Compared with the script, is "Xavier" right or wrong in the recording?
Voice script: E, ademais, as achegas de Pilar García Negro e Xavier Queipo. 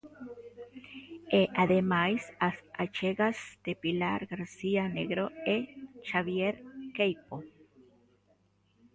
right